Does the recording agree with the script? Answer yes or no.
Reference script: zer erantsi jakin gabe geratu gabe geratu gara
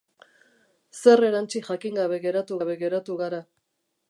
yes